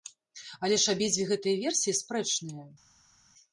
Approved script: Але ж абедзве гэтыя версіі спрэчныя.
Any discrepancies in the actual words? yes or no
no